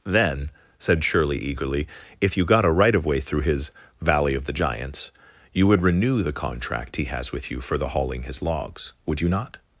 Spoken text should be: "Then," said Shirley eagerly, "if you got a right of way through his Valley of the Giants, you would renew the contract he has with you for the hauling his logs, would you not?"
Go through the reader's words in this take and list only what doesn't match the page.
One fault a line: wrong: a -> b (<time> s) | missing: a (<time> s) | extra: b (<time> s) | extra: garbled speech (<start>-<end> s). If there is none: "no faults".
no faults